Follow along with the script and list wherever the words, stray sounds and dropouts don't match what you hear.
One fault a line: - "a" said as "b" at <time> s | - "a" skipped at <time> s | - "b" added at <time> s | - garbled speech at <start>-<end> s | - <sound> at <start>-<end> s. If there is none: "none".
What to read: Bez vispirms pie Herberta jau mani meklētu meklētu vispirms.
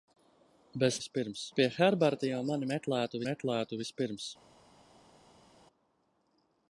none